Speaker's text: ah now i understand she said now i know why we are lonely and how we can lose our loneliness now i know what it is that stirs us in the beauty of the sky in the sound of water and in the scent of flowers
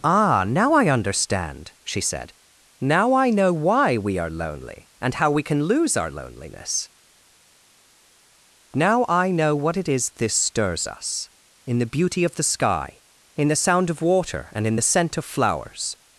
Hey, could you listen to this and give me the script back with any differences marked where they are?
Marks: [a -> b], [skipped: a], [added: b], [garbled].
ah now i understand she said now i know why we are lonely and how we can lose our loneliness now i know what it is [that -> this] stirs us in the beauty of the sky in the sound of water and in the scent of flowers